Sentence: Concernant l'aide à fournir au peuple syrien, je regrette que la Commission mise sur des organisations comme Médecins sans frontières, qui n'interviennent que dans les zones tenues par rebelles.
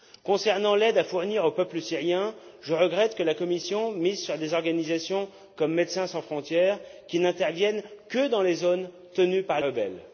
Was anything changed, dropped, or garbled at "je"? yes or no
no